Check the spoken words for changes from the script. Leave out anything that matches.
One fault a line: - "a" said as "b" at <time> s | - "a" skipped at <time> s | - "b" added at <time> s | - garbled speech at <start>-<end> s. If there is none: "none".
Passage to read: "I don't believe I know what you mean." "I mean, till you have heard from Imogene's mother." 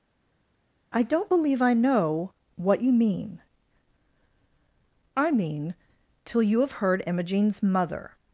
- "from" skipped at 7.0 s